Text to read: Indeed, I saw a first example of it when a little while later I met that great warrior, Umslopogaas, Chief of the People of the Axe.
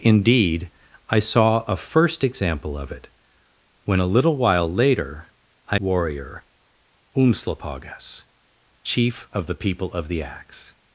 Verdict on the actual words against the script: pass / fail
fail